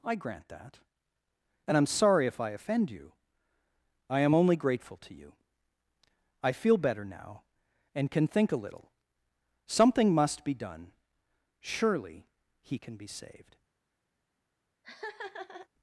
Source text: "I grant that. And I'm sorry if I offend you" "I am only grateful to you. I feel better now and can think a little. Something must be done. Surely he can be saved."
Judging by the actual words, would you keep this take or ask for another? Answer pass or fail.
pass